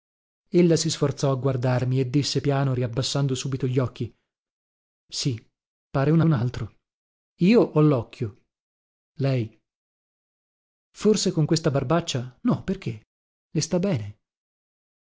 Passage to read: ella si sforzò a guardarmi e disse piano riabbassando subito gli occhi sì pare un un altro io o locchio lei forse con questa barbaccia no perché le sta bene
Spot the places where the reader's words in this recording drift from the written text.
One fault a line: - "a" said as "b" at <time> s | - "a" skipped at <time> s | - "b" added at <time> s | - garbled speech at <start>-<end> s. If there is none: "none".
none